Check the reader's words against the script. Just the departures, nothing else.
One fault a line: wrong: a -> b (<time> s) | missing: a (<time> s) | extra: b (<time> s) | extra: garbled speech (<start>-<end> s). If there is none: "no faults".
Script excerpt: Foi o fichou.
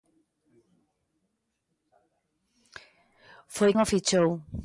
no faults